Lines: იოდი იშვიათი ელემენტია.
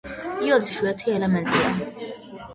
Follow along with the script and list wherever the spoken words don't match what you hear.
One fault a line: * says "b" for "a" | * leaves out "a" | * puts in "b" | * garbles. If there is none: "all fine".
all fine